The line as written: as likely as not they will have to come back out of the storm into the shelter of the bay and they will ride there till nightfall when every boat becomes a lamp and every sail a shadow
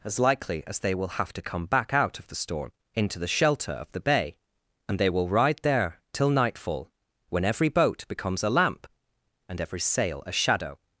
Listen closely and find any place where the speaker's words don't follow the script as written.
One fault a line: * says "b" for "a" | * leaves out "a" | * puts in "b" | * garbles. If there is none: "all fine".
* leaves out "not"